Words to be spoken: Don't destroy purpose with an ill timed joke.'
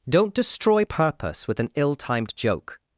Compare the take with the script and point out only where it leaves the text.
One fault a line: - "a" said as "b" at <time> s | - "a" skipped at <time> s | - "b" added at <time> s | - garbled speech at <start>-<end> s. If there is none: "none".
none